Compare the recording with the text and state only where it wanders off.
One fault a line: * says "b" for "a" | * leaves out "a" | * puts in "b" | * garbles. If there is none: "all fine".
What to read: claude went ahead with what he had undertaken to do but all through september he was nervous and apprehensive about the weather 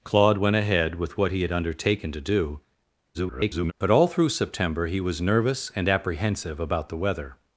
* garbles